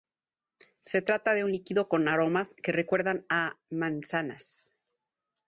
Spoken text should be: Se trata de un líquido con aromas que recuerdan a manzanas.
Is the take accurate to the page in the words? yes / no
yes